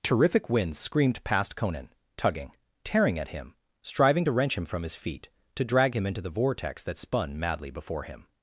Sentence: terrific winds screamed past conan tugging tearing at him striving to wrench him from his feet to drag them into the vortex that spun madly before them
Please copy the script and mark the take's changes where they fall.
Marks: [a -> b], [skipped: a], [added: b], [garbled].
terrific winds screamed past conan tugging tearing at him striving to wrench him from his feet to drag [them -> him] into the vortex that spun madly before [them -> him]